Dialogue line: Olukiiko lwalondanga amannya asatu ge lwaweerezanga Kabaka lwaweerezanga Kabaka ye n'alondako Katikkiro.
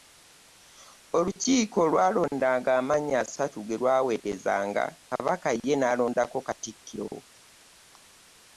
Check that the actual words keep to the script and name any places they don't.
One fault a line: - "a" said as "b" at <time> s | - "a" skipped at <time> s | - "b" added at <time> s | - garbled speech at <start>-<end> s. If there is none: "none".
- "lwaweerezanga Kabaka" skipped at 5.5 s